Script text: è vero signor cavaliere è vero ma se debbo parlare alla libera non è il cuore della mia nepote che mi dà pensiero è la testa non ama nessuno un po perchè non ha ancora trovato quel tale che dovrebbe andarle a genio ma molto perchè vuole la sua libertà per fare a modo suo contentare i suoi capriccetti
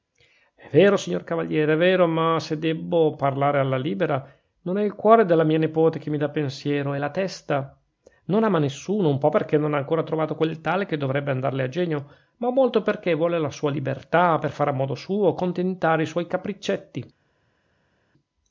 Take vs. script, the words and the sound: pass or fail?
pass